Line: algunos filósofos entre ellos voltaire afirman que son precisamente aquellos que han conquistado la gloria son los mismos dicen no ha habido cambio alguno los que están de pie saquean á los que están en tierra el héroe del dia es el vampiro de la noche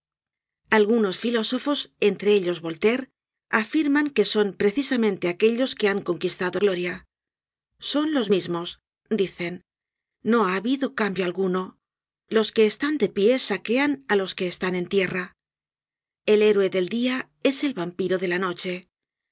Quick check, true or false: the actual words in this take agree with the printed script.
false